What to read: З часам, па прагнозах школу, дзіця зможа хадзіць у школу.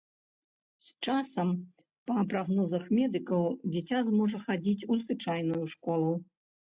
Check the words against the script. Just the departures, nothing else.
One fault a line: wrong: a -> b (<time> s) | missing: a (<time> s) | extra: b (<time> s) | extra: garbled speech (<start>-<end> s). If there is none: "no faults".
wrong: школу -> медыкаў (3.0 s)
extra: звычайную (5.1 s)